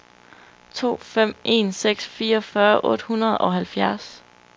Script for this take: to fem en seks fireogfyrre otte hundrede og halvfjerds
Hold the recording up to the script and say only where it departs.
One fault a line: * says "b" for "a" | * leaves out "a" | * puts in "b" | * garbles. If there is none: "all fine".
all fine